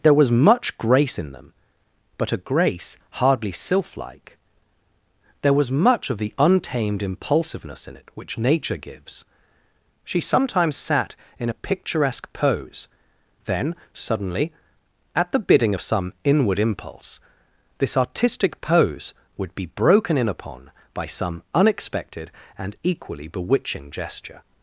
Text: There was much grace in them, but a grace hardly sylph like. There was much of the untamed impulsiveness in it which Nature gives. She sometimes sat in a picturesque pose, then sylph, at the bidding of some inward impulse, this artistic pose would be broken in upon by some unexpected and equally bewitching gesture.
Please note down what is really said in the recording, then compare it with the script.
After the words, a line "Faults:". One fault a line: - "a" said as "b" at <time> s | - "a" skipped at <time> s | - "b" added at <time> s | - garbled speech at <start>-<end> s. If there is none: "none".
There was much grace in them, but a grace hardly sylph like. There was much of the untamed impulsiveness in it which Nature gives. She sometimes sat in a picturesque pose, then suddenly, at the bidding of some inward impulse, this artistic pose would be broken in upon by some unexpected and equally bewitching gesture.
Faults:
- "sylph" said as "suddenly" at 13.9 s